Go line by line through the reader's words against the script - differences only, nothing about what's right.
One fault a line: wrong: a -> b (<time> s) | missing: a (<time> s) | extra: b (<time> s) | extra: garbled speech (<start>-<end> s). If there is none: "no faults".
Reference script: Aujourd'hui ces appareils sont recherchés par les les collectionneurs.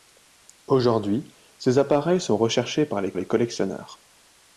no faults